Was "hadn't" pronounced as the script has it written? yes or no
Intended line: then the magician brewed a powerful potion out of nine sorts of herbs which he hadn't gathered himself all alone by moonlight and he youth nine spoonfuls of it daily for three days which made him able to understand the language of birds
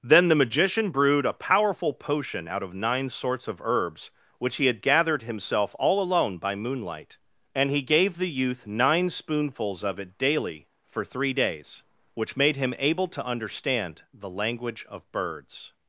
no